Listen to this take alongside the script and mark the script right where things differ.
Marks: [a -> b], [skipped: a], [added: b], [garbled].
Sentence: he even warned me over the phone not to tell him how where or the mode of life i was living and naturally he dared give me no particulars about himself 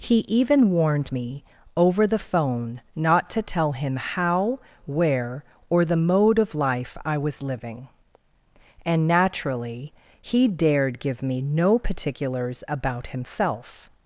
he even warned me over the phone not to tell him how where or the mode of life i was living and naturally he dared give me no particulars about himself